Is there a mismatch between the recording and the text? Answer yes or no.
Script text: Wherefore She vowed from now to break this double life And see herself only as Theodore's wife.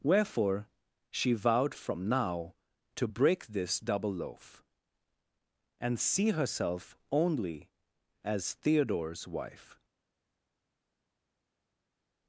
yes